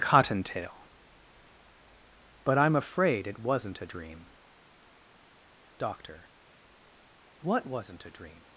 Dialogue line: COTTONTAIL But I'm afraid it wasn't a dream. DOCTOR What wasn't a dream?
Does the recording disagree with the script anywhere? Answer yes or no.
no